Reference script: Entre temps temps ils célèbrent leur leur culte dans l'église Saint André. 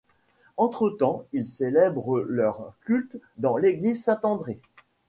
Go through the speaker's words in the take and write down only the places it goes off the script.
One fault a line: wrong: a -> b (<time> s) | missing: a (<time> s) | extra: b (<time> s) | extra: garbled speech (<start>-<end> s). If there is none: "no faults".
missing: temps (1.3 s)
missing: leur (2.7 s)